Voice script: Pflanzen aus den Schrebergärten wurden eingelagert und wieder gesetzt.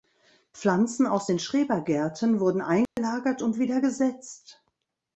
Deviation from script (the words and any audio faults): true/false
true